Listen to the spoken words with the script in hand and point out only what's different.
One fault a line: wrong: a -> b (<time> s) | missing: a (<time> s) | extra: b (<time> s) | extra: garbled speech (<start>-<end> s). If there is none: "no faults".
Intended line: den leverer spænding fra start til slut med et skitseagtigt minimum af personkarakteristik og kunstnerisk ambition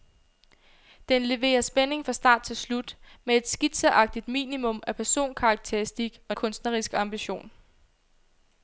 no faults